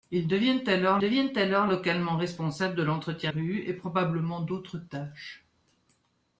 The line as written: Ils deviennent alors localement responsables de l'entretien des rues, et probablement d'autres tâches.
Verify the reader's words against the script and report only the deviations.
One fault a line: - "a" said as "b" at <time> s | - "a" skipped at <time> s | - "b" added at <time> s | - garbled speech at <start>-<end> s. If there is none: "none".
- "deviennent alors" added at 1.0 s
- "des" skipped at 3.3 s